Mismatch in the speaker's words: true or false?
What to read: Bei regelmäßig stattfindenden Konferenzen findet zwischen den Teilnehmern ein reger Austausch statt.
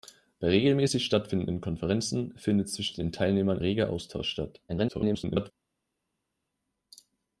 true